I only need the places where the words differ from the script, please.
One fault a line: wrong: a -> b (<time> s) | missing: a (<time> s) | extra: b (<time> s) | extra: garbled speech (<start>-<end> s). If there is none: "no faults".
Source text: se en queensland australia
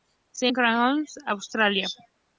no faults